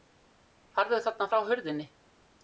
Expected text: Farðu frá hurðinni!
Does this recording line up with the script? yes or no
no